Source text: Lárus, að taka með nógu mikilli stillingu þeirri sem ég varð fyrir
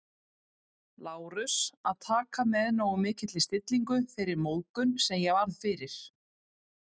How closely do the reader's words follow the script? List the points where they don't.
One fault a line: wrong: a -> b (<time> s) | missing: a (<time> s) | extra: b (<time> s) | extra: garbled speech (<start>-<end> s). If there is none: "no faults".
extra: móðgun (4.5 s)